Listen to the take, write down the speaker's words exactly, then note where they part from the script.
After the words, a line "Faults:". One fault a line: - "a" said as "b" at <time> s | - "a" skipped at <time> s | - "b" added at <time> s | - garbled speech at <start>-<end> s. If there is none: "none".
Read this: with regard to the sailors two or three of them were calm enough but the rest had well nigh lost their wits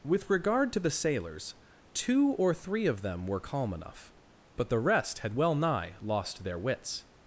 with regard to the sailors two or three of them were calm enough but the rest had well nigh lost their wits
Faults:
none